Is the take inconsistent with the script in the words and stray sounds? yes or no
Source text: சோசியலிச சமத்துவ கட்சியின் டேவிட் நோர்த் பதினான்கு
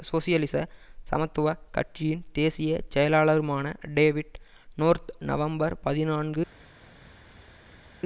yes